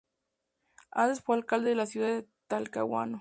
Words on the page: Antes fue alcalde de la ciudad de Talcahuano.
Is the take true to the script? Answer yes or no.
yes